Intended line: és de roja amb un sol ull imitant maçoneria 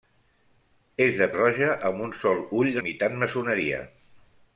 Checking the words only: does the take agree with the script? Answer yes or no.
yes